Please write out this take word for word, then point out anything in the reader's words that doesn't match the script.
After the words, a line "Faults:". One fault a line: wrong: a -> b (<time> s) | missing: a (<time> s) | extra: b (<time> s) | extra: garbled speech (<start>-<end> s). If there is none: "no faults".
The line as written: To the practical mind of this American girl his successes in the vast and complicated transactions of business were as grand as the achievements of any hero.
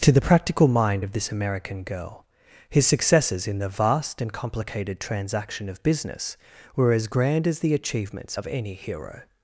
To the practical mind of this American girl his successes in the vast and complicated transaction of business were as grand as the achievements of any hero.
Faults:
wrong: transactions -> transaction (5.0 s)